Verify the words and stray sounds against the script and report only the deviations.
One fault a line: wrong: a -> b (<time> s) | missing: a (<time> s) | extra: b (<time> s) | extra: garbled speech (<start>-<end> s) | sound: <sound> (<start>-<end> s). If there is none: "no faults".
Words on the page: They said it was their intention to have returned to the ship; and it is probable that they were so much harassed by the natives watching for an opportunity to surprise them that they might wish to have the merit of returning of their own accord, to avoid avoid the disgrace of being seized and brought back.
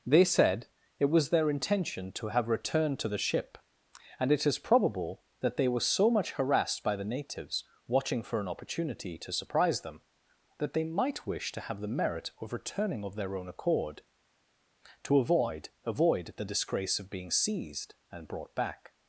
no faults